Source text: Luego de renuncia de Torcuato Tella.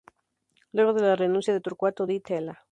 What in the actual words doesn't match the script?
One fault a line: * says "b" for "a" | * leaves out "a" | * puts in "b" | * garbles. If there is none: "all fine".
* puts in "la"
* puts in "Di"